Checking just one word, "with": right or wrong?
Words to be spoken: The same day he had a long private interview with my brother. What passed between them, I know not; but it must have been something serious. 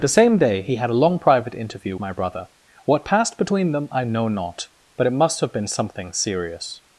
wrong